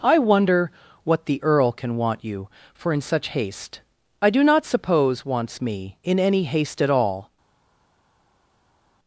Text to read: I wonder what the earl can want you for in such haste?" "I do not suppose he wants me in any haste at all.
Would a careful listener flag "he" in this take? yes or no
yes